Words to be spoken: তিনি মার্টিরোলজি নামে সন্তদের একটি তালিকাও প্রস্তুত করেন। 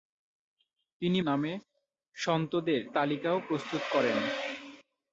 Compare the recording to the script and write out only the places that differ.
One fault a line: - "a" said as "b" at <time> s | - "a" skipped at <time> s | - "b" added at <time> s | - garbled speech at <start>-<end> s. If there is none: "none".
- "মার্টিরোলজি" skipped at 1.2 s
- "একটি" skipped at 2.8 s